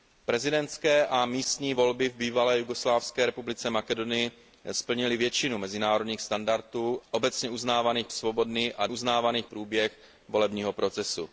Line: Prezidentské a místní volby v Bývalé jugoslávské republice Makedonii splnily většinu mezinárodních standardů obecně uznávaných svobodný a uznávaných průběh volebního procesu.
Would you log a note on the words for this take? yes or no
no